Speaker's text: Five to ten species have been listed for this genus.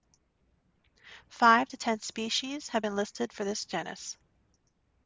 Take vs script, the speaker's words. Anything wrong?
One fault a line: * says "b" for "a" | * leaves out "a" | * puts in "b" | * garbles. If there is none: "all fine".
all fine